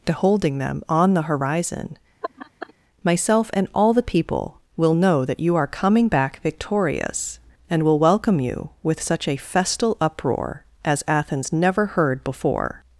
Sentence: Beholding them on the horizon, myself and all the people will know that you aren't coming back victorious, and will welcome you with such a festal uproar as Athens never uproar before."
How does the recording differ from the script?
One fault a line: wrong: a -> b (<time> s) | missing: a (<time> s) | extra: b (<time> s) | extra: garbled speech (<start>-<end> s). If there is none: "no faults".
wrong: aren't -> are (5.5 s)
wrong: uproar -> heard (11.9 s)